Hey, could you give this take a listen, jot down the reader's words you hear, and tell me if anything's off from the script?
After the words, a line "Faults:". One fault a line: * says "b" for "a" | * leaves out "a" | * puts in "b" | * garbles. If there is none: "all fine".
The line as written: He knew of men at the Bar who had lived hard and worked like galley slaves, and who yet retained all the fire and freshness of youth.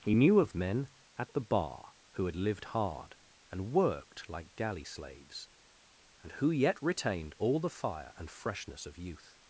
He knew of men at the Bar who had lived hard and worked like galley slaves, and who yet retained all the fire and freshness of youth.
Faults:
all fine